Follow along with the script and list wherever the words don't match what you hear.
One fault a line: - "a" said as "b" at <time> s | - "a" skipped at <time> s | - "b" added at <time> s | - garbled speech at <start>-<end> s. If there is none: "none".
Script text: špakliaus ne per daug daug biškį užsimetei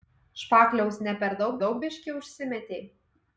none